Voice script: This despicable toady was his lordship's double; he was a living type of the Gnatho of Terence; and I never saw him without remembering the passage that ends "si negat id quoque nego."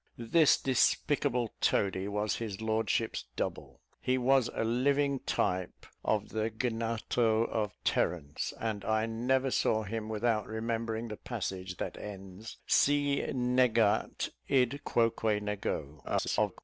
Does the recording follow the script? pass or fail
fail